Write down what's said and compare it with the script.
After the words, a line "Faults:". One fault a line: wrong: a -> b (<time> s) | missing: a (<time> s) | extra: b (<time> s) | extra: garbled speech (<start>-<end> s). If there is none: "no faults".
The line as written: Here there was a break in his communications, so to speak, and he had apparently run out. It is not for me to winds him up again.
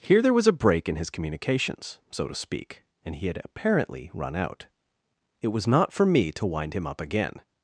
Here there was a break in his communications, so to speak, and he had apparently run out. It was not for me to wind him up again.
Faults:
wrong: is -> was (5.5 s)
wrong: winds -> wind (6.5 s)